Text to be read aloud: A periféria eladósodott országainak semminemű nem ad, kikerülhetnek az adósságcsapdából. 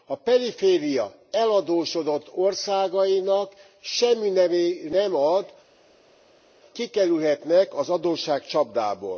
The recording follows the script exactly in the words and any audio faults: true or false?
true